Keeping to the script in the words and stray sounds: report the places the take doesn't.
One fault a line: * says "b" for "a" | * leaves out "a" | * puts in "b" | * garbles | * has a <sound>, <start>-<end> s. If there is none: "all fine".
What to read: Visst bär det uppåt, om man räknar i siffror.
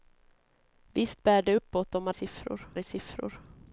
* says "siffror" for "räknar"